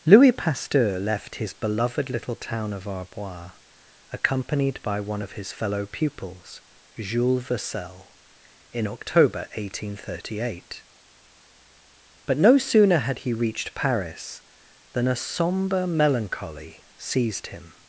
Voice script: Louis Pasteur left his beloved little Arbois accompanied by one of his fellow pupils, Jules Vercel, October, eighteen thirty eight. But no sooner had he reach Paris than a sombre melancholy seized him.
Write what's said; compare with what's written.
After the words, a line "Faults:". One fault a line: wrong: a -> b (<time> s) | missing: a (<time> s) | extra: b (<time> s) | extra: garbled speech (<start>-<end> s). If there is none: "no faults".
Louis Pasteur left his beloved little town of Arbois accompanied by one of his fellow pupils, Jules Vercel, in October, eighteen thirty eight. But no sooner had he reached Paris than a sombre melancholy seized him.
Faults:
extra: town of (2.4 s)
extra: in (8.7 s)
wrong: reach -> reached (13.3 s)